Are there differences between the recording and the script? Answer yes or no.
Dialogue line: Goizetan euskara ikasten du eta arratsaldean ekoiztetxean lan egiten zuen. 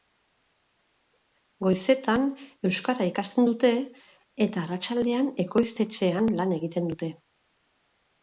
yes